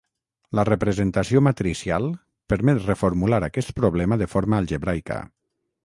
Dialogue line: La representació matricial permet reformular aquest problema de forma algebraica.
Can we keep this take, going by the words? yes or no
yes